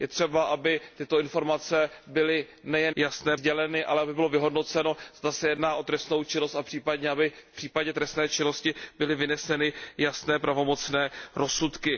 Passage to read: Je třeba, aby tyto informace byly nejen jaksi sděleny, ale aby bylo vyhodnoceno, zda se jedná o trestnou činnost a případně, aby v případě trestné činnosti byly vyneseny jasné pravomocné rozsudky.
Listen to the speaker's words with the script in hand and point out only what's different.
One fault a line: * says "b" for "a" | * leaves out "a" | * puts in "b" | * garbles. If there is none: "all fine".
* says "jasné" for "jaksi"